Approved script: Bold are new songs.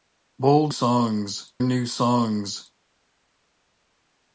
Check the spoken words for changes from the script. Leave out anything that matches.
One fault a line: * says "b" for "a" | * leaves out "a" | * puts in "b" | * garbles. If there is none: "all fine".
* says "songs" for "are"